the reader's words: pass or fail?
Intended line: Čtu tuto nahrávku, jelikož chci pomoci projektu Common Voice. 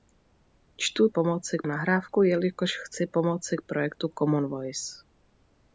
fail